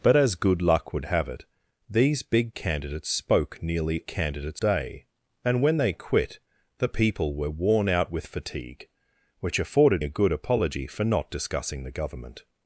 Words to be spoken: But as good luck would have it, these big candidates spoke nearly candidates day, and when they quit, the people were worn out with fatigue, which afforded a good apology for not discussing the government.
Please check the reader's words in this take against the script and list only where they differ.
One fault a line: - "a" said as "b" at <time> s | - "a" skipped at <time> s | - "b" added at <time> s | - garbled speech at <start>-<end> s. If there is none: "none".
none